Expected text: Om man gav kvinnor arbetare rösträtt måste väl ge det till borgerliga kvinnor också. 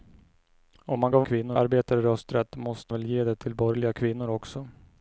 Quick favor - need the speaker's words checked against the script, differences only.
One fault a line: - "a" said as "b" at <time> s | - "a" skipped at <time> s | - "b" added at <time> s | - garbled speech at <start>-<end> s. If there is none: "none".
none